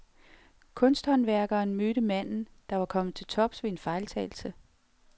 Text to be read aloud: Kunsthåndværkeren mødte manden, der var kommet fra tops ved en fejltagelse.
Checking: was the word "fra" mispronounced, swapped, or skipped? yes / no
yes